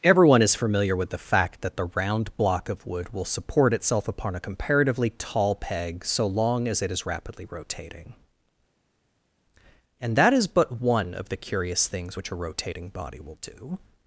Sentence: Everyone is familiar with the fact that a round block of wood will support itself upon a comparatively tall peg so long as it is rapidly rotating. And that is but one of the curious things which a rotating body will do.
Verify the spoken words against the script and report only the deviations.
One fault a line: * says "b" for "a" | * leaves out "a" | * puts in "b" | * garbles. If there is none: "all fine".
* says "the" for "a"